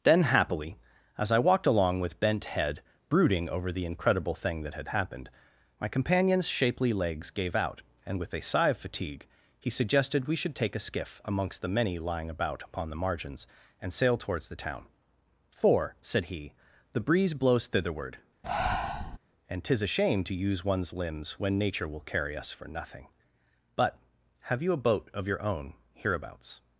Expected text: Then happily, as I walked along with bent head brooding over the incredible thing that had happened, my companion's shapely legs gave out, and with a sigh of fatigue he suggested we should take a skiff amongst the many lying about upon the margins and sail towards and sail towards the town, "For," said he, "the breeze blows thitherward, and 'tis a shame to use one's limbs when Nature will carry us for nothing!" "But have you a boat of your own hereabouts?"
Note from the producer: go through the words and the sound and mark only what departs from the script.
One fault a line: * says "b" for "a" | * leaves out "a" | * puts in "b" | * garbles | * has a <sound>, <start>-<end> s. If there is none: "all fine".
* leaves out "and sail towards"
* has a breath, 18.4-19.2 s